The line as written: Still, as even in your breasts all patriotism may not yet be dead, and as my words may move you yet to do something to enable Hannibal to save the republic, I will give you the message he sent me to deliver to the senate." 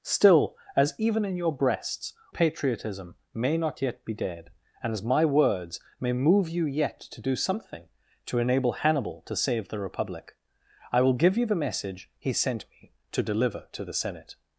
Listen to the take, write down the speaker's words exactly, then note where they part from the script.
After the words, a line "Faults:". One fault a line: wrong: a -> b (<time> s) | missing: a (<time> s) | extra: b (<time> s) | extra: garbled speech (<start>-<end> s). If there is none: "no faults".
Still, as even in your breasts patriotism may not yet be dead, and as my words may move you yet to do something to enable Hannibal to save the republic, I will give you the message he sent me to deliver to the senate."
Faults:
missing: all (2.1 s)